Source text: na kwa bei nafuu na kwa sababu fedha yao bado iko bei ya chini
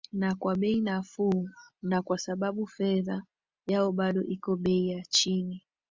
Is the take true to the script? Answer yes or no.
yes